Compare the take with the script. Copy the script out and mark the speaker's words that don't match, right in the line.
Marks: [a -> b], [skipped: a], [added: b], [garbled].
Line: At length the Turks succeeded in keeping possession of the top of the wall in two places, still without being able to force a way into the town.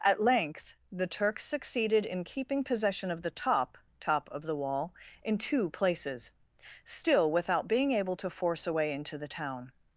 At length the Turks succeeded in keeping possession of the top [added: top] of the wall in two places, still without being able to force a way into the town.